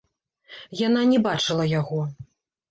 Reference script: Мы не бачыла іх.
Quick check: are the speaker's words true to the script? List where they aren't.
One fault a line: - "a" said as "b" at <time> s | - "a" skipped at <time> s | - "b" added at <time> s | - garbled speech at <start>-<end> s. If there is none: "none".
- "Мы" said as "Яна" at 0.9 s
- "іх" said as "яго" at 1.8 s